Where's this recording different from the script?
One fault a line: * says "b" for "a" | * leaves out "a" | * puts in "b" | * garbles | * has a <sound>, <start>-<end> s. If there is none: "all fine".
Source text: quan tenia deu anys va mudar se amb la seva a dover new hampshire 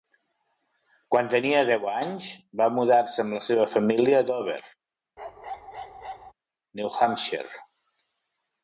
* puts in "família"
* has a bark, 5.2-6.3 s